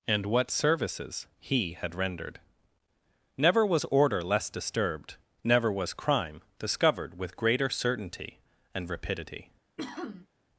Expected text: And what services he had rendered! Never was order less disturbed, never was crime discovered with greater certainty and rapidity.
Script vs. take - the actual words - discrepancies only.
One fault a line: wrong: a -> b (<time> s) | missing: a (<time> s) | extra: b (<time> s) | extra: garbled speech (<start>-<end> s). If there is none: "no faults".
no faults